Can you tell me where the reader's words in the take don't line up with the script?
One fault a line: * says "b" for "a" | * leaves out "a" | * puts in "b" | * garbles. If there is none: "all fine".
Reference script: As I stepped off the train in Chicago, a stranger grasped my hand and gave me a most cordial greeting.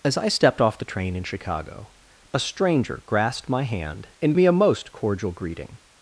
* leaves out "gave"